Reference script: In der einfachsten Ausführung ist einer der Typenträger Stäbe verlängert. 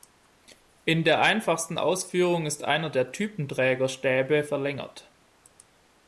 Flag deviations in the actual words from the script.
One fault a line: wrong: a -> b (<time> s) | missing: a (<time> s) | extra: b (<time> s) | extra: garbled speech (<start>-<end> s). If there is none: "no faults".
no faults